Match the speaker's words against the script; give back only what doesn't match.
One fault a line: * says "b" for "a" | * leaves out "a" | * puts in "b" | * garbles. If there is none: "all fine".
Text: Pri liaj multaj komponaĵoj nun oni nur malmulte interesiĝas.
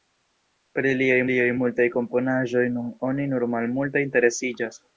* puts in "liaj"